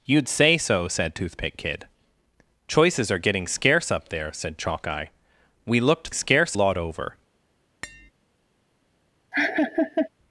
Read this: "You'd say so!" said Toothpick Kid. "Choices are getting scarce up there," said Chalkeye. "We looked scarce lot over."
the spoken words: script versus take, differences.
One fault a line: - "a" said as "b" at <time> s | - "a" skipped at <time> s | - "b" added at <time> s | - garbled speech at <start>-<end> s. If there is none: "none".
none